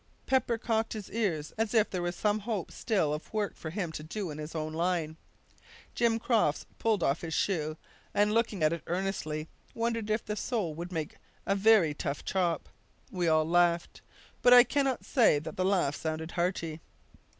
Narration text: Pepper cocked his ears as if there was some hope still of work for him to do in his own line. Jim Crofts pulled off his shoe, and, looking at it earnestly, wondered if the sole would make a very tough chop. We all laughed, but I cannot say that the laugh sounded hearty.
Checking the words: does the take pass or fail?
pass